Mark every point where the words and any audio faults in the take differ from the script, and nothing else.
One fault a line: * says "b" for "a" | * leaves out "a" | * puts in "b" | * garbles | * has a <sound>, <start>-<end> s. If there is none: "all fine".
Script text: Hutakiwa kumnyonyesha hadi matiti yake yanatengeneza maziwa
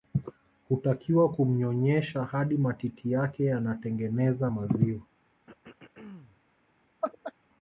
* has a throat clearing, 5.5-6.4 s
* has a laugh, 7.0-7.3 s